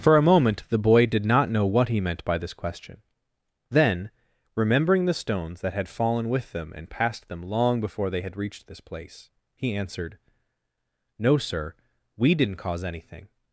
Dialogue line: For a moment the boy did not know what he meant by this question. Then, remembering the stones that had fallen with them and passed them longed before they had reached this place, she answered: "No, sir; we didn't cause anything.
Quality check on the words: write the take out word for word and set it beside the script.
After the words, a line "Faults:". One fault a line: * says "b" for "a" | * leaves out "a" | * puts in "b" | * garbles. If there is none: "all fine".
For a moment the boy did not know what he meant by this question. Then, remembering the stones that had fallen with them and passed them long before they had reached this place, he answered: "No, sir; we didn't cause anything.
Faults:
* says "long" for "longed"
* says "he" for "she"